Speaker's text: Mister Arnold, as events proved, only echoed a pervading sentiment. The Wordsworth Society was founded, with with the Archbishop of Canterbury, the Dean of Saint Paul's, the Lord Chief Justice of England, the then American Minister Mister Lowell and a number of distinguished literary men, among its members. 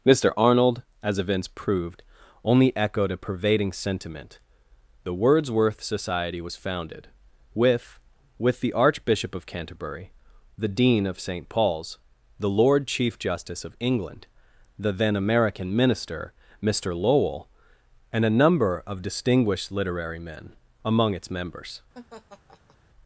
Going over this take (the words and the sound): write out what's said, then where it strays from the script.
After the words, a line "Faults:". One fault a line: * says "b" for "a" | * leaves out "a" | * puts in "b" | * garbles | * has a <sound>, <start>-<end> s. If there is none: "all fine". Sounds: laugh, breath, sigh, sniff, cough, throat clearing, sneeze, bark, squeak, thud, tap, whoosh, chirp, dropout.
Mister Arnold, as events proved, only echoed a pervading sentiment. The Wordsworth Society was founded, with with the Archbishop of Canterbury, the Dean of Saint Paul's, the Lord Chief Justice of England, the then American Minister Mister Lowell and a number of distinguished literary men, among its members.
Faults:
* has a laugh, 21.9-22.8 s